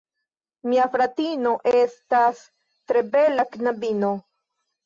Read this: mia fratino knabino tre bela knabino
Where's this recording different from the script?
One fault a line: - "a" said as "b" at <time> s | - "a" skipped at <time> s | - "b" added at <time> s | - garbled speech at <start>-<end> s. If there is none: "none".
- "knabino" said as "estas" at 1.7 s